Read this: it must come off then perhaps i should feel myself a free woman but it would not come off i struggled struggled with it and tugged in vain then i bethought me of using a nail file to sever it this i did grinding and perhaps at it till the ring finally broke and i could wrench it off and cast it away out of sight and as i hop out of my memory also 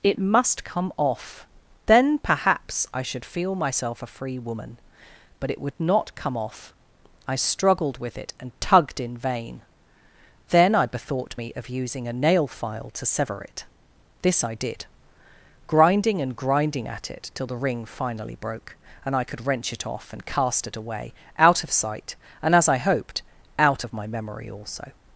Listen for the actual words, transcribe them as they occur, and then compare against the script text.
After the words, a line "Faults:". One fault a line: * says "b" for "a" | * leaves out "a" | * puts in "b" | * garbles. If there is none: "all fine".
it must come off then perhaps i should feel myself a free woman but it would not come off i struggled with it and tugged in vain then i bethought me of using a nail file to sever it this i did grinding and grinding at it till the ring finally broke and i could wrench it off and cast it away out of sight and as i hoped out of my memory also
Faults:
* leaves out "struggled"
* says "grinding" for "perhaps"
* says "hoped" for "hop"